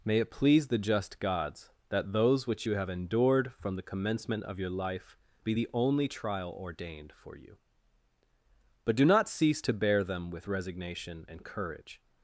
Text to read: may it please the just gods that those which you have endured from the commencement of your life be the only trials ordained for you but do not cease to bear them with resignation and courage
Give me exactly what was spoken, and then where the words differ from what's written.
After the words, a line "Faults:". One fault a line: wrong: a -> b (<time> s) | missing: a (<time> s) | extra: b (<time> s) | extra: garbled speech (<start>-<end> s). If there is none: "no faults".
may it please the just gods that those which you have endured from the commencement of your life be the only trial ordained for you but do not cease to bear them with resignation and courage
Faults:
wrong: trials -> trial (6.1 s)